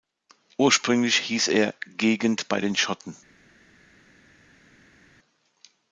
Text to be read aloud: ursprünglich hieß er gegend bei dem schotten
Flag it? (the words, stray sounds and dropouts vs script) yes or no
yes